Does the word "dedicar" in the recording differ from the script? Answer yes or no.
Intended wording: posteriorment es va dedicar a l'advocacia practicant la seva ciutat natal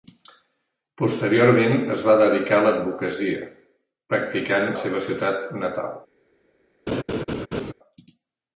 no